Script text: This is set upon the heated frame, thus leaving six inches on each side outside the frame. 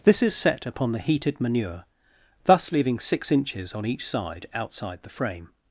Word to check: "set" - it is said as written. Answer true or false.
true